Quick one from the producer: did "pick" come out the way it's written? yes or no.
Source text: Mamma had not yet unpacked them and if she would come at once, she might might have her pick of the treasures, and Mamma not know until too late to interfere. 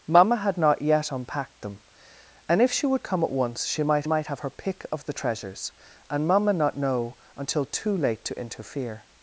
yes